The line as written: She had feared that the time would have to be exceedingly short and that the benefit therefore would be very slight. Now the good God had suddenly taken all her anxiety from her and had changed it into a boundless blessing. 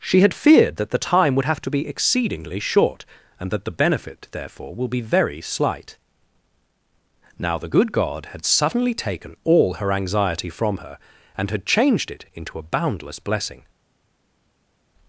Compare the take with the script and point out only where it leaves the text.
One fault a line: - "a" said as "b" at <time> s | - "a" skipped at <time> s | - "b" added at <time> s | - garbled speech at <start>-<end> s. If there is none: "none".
- "would" said as "will" at 4.8 s